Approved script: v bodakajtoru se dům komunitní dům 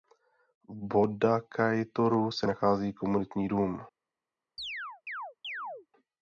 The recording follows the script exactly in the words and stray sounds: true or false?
false